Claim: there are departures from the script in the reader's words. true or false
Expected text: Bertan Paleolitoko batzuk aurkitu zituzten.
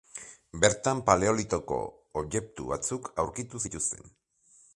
true